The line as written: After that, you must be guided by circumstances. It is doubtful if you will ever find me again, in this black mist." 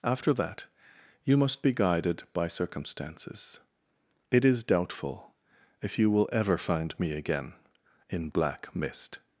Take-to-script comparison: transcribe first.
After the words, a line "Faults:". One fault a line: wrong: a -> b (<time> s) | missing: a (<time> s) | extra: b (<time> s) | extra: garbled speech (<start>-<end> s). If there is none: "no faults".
After that, you must be guided by circumstances. It is doubtful if you will ever find me again, in black mist."
Faults:
missing: this (8.3 s)